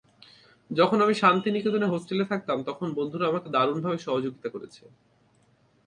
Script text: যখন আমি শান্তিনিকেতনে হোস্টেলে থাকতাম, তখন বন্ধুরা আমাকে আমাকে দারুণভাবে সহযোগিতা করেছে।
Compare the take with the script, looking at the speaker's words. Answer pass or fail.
fail